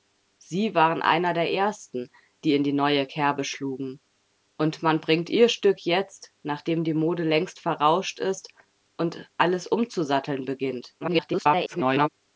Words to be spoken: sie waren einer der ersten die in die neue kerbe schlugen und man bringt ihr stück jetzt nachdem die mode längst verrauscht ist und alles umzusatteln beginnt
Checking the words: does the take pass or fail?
fail